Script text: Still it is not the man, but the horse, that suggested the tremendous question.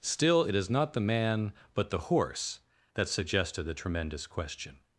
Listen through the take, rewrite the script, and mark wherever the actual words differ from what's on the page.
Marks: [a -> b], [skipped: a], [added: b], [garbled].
Still it is not the man, but the horse, that suggested the tremendous question.